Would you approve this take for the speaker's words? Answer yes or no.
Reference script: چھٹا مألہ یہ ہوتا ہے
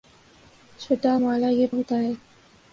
yes